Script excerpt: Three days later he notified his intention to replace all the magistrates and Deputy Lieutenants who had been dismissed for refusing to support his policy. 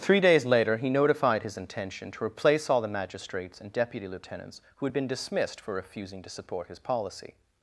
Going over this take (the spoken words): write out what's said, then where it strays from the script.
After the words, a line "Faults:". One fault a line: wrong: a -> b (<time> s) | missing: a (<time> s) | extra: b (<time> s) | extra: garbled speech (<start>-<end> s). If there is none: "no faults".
Three days later he notified his intention to replace all the magistrates and Deputy Lieutenants who had been dismissed for refusing to support his policy.
Faults:
no faults